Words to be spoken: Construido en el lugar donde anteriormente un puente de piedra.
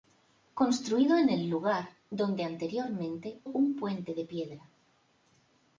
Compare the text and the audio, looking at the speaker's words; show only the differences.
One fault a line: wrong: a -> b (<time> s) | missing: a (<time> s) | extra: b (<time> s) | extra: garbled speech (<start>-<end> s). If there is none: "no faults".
no faults